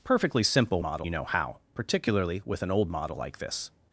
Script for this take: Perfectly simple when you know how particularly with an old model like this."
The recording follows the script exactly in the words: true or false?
false